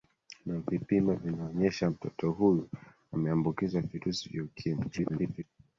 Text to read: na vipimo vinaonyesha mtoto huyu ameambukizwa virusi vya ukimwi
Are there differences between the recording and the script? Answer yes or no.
yes